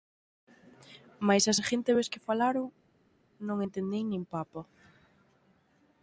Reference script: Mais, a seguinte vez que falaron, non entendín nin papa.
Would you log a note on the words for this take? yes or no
no